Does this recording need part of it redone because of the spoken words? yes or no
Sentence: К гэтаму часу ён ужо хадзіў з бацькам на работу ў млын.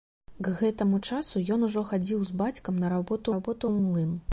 yes